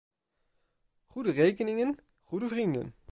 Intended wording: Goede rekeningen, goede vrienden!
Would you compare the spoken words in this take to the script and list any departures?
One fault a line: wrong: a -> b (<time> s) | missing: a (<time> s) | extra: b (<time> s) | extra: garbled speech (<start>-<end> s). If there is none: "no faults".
no faults